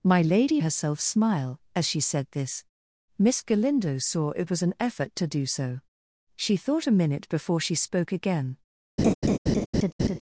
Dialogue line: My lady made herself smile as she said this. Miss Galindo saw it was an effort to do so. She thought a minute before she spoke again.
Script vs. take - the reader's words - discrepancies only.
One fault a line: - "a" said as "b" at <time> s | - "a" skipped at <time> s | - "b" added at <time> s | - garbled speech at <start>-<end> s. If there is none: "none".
- "made" skipped at 0.6 s